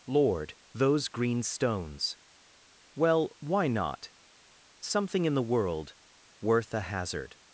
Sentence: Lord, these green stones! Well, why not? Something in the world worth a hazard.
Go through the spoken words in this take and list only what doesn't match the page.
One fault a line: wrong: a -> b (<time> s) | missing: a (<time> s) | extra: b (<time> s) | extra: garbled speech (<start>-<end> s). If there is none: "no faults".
wrong: these -> those (0.7 s)